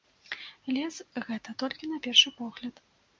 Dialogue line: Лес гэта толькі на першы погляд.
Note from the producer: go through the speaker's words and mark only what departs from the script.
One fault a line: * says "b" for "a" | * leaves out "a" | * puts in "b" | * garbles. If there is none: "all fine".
all fine